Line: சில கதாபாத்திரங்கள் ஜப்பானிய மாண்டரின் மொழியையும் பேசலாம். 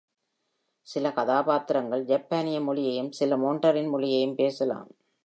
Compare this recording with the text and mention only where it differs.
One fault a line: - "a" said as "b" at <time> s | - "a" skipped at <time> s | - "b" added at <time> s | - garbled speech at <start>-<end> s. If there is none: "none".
- "மொழியையும் சில" added at 2.6 s